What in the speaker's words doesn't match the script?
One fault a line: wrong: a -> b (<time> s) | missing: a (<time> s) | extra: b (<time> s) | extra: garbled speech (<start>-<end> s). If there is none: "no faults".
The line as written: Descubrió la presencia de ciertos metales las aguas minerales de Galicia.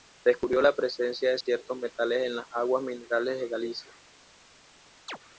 extra: en (2.2 s)